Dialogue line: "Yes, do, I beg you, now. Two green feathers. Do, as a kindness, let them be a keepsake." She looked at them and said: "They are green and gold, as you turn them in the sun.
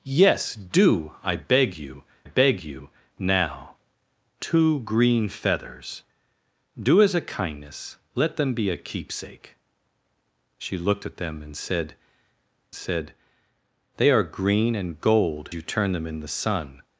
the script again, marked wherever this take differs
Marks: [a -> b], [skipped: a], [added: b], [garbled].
"Yes, do, I beg you, [added: beg you] now. Two green feathers. Do, as a kindness, let them be a keepsake." She looked at them and said: [added: said] "They are green and gold, [skipped: as] you turn them in the sun.